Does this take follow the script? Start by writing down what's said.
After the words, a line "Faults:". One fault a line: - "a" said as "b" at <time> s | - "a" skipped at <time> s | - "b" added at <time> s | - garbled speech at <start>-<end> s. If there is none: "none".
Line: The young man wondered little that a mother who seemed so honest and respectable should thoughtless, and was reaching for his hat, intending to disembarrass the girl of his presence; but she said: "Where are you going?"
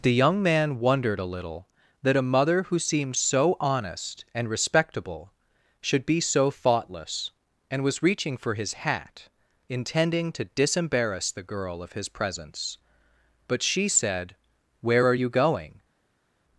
The young man wondered a little that a mother who seemed so honest and respectable should be so thoughtless, and was reaching for his hat, intending to disembarrass the girl of his presence; but she said: "Where are you going?"
Faults:
- "a" added at 1.2 s
- "be so" added at 6.1 s